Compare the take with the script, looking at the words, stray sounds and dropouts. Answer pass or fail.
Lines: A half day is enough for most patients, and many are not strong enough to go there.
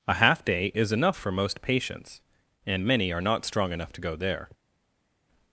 pass